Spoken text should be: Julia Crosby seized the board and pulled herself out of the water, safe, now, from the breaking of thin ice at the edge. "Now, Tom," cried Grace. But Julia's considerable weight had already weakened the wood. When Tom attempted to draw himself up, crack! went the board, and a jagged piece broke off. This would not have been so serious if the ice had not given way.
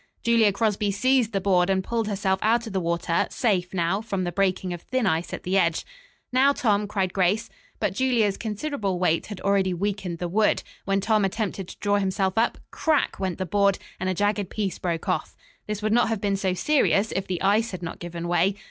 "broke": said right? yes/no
yes